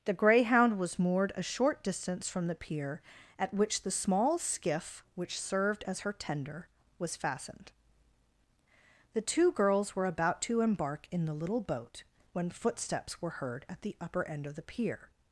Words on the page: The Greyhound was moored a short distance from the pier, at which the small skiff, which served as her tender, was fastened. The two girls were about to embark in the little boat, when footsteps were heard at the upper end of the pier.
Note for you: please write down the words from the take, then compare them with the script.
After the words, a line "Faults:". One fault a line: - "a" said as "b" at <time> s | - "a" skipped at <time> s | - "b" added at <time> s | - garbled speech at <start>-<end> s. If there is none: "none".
The Greyhound was moored a short distance from the pier, at which the small skiff, which served as her tender, was fastened. The two girls were about to embark in the little boat, when footsteps were heard at the upper end of the pier.
Faults:
none